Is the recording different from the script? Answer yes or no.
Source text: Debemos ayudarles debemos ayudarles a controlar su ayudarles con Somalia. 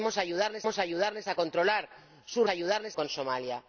no